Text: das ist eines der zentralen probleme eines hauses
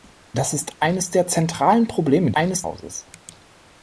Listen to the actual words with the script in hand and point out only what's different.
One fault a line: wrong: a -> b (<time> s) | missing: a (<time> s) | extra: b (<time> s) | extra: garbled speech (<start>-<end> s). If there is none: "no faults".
no faults